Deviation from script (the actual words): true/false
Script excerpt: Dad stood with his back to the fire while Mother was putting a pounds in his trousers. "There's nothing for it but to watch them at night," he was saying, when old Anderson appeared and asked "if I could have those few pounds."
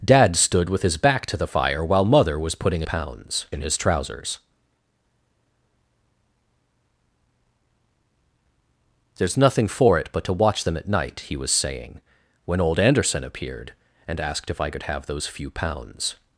false